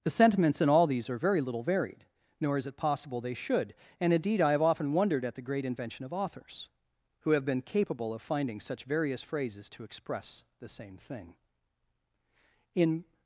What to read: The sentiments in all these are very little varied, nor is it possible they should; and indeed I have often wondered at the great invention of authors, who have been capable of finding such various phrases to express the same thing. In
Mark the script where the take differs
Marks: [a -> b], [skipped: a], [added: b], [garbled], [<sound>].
The sentiments in all these are very little varied, nor is it possible they should; and indeed I have often wondered at the great invention of authors, who have been capable of finding such various phrases to express the same thing. In